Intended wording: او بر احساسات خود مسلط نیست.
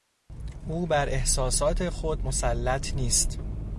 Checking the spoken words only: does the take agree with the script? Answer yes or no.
yes